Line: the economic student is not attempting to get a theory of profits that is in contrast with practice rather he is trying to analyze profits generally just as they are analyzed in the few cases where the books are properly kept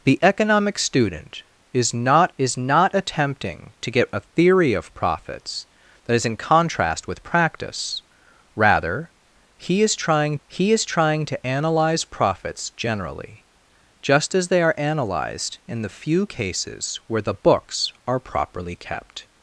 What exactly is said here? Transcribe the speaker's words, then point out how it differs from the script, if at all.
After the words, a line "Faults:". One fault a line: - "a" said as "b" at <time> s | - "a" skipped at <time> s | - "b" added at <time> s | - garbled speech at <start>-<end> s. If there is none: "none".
the economic student is not is not attempting to get a theory of profits that is in contrast with practice rather he is trying he is trying to analyze profits generally just as they are analyzed in the few cases where the books are properly kept
Faults:
- "is not" added at 2.4 s
- "he is trying" added at 10.5 s